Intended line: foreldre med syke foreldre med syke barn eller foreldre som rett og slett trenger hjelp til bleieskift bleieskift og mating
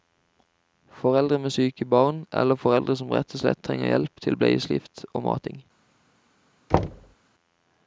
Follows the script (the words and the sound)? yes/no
no